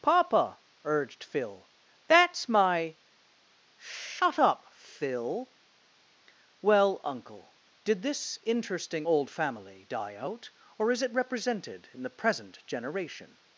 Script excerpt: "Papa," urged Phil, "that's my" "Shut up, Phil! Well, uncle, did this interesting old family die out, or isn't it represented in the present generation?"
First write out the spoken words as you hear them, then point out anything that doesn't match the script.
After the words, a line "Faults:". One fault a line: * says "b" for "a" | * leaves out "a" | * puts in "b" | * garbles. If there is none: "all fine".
"Papa," urged Phil, "that's my" "Shut up, Phil! Well, uncle, did this interesting old family die out, or is it represented in the present generation?"
Faults:
* says "is" for "isn't"